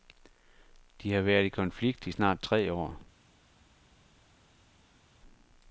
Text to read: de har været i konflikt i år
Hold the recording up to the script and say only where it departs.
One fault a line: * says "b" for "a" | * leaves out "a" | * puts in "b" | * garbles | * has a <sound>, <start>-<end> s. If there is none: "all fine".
* puts in "snart tre"